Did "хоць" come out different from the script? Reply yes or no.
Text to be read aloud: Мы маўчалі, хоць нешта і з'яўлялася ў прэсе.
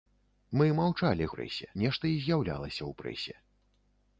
yes